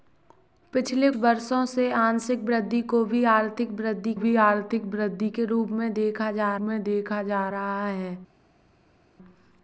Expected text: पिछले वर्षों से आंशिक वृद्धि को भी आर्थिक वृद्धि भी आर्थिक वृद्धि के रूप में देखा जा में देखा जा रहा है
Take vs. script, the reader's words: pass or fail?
pass